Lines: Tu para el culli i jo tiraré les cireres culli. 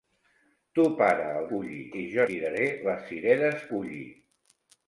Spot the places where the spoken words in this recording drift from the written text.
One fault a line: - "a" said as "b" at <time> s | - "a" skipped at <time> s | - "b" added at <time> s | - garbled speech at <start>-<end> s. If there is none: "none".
none